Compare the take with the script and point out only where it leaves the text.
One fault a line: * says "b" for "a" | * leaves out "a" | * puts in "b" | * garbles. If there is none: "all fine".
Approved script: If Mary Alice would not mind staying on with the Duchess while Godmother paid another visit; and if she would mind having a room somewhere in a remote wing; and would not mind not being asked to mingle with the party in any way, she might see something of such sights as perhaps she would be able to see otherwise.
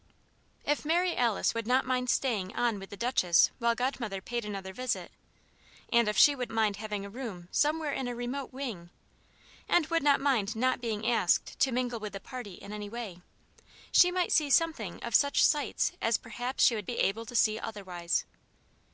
all fine